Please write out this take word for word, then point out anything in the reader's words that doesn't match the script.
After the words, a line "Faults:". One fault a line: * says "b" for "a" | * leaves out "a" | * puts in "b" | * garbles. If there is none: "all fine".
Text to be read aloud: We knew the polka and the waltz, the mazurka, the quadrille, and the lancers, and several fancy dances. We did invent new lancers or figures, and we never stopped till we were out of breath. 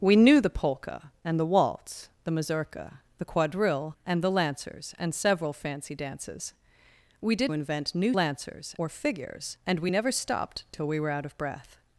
We knew the polka and the waltz, the mazurka, the quadrille, and the lancers, and several fancy dances. We did invent new lancers or figures, and we never stopped till we were out of breath.
Faults:
all fine